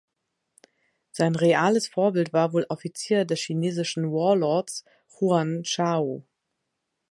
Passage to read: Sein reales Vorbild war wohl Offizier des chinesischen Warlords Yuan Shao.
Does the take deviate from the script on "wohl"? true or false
false